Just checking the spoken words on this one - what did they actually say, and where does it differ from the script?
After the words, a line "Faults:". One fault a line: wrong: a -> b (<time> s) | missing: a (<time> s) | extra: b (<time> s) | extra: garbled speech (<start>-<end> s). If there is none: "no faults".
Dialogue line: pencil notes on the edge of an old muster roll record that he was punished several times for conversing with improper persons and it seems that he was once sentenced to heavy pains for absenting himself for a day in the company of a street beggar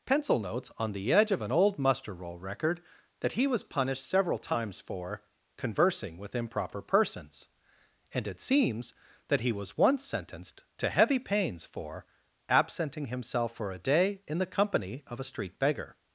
pencil notes on the edge of an old muster roll record that he was punished several times for conversing with improper persons and it seems that he was once sentenced to heavy pains for absenting himself for a day in the company of a street beggar
Faults:
no faults